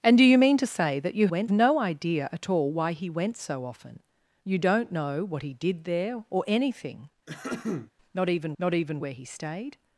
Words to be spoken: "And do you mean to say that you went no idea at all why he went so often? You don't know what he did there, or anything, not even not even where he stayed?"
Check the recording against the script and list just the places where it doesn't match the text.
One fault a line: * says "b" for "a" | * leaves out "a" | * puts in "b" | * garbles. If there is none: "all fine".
all fine